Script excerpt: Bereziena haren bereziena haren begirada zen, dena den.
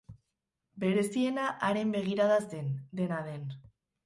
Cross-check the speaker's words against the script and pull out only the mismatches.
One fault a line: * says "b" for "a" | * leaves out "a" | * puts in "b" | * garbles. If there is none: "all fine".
* leaves out "bereziena haren"